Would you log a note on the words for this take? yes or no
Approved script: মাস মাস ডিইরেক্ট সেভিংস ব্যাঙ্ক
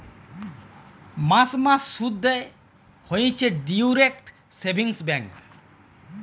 yes